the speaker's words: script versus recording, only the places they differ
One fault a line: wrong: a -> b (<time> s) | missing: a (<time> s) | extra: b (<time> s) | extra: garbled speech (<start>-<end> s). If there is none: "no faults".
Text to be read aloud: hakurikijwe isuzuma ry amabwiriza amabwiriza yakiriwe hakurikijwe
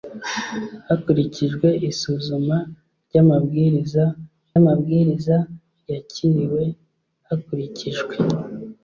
no faults